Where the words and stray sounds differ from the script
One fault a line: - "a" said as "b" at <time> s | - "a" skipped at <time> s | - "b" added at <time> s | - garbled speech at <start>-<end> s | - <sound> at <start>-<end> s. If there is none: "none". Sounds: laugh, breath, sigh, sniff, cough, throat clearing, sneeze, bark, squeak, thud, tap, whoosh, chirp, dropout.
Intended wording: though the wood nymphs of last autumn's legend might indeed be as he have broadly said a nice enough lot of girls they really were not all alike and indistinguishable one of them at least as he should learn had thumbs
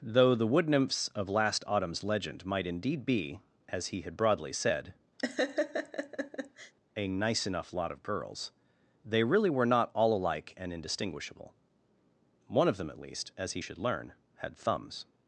- "have" said as "had" at 4.0 s
- laugh at 5.2-6.7 s